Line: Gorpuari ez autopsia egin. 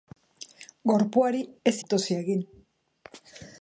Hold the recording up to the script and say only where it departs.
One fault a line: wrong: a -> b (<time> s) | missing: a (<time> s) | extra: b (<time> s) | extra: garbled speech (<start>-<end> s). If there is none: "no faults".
no faults